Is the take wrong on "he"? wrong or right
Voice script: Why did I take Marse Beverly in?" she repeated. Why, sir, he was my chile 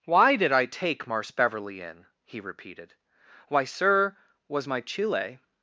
wrong